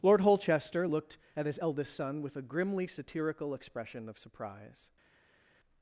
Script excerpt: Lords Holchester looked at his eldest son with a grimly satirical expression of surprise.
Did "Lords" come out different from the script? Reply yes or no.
yes